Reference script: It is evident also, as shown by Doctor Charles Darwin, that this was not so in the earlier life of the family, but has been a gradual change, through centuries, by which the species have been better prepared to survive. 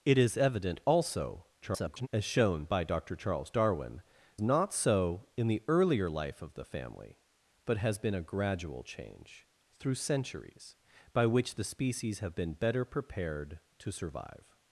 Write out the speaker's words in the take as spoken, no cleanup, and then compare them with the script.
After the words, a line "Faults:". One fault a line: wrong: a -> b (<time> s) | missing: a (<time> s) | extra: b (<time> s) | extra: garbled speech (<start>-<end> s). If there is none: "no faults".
It is evident also, [garbled] as shown by Doctor Charles Darwin, not so in the earlier life of the family, but has been a gradual change, through centuries, by which the species have been better prepared to survive.
Faults:
extra: garbled speech (1.6-2.1 s)
missing: that this was (4.0 s)